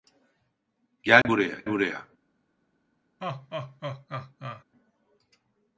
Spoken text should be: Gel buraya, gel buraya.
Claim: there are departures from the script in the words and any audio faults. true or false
true